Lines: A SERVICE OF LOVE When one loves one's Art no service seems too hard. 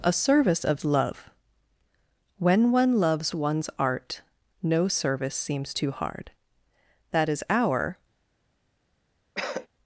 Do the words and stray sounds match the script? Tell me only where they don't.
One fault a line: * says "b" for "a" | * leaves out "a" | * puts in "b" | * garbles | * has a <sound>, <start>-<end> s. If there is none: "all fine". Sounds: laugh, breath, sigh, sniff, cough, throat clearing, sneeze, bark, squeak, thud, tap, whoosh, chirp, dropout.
* puts in "That is our"
* has a cough, 9.4-9.7 s